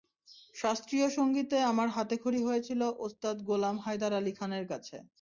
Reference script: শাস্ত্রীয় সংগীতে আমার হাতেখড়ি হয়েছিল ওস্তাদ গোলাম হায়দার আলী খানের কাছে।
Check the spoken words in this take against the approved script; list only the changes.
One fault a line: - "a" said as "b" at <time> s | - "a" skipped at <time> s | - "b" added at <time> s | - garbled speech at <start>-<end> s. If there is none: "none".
none